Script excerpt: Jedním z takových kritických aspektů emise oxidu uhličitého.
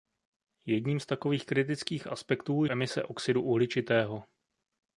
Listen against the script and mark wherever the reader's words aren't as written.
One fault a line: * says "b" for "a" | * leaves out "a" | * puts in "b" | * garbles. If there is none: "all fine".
all fine